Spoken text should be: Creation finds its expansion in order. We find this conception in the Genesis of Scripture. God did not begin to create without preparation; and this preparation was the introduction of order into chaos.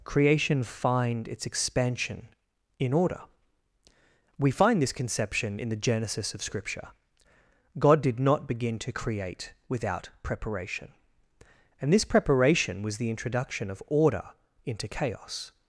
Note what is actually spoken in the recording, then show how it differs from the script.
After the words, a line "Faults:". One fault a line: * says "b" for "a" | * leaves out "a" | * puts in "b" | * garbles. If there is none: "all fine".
Creation find its expansion in order. We find this conception in the Genesis of Scripture. God did not begin to create without preparation; and this preparation was the introduction of order into chaos.
Faults:
* says "find" for "finds"